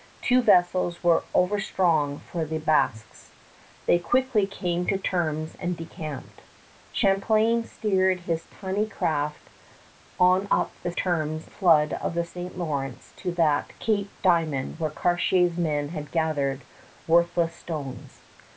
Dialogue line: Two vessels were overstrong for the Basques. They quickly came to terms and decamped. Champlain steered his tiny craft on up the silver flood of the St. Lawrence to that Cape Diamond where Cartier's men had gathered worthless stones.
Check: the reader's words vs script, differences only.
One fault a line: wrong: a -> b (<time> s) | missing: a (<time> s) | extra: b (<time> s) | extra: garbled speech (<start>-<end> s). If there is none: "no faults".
wrong: silver -> terms (10.9 s)